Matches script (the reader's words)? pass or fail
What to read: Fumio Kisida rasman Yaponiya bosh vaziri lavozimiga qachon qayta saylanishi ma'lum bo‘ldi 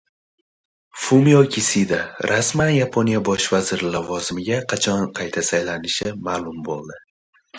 pass